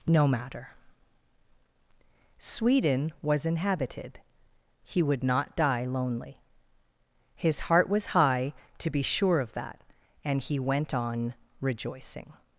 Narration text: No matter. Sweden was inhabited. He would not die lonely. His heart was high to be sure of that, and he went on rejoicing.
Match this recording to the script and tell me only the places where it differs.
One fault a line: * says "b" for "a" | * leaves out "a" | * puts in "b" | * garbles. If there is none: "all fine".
all fine